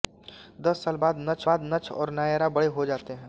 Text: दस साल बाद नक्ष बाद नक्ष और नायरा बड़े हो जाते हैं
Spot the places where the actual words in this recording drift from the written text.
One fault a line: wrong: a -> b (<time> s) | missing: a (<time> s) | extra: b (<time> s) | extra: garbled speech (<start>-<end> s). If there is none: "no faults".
no faults